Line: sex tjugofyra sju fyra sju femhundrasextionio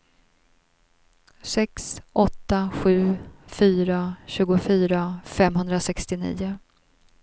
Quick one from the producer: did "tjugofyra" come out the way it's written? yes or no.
no